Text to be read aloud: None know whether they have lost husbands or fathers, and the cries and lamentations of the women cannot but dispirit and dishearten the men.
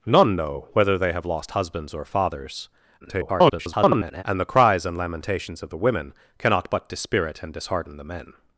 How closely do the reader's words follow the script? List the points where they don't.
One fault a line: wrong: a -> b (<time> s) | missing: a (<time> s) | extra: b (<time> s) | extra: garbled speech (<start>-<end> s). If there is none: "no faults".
extra: garbled speech (3.0-4.2 s)